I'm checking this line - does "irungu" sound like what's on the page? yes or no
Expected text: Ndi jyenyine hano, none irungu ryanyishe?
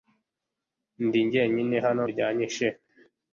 no